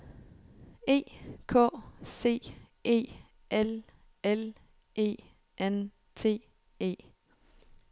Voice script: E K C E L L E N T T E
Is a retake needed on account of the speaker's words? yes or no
yes